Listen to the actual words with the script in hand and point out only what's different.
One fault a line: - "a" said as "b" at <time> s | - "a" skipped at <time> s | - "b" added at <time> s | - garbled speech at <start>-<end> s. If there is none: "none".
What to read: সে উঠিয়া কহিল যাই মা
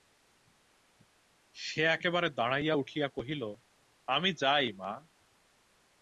- "একেবারে দাঁড়াইয়া" added at 1.9 s
- "আমি" added at 4.1 s